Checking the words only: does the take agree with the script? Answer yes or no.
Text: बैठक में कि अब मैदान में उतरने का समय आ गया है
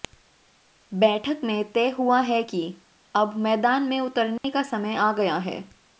no